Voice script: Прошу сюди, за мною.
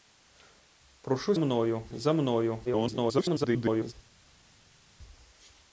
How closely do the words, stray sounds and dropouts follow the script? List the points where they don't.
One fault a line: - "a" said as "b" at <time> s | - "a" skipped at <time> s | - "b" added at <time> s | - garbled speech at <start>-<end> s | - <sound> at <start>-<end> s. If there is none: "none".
- "сюди" said as "мною" at 1.4 s
- garbled speech at 2.6-3.9 s